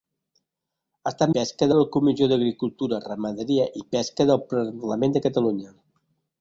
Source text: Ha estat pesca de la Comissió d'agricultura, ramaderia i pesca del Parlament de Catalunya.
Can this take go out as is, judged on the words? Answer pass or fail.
pass